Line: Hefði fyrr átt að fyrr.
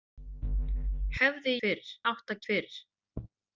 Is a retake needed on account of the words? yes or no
no